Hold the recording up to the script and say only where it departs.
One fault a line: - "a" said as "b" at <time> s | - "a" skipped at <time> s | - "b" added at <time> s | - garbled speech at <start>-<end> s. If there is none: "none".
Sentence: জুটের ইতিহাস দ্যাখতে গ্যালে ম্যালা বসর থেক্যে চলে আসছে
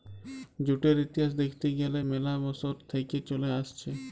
none